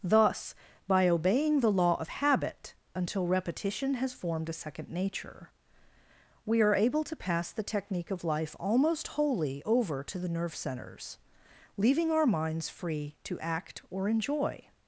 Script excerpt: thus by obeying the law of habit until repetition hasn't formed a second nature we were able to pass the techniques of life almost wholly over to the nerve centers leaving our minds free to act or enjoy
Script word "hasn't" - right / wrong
wrong